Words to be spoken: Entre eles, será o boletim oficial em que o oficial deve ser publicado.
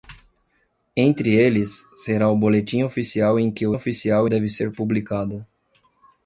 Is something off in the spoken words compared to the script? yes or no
no